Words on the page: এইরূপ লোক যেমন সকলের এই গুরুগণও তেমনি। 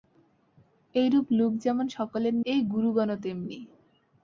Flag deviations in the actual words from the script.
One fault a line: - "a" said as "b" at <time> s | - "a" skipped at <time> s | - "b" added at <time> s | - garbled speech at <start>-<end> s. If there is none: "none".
none